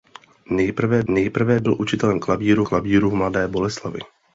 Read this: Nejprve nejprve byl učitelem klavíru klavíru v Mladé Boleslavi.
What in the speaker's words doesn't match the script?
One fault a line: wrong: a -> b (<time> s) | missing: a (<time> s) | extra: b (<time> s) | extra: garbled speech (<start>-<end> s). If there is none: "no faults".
no faults